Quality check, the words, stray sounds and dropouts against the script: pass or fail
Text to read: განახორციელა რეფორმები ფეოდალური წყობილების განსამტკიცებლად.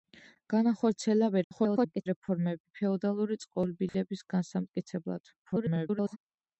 fail